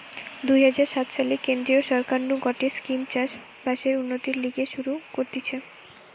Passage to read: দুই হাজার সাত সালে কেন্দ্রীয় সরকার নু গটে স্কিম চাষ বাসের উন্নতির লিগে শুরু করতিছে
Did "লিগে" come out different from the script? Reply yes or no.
no